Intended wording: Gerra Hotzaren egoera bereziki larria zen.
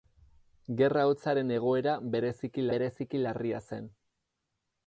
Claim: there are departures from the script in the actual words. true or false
true